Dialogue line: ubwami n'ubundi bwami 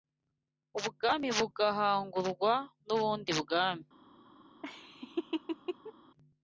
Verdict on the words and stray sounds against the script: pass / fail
fail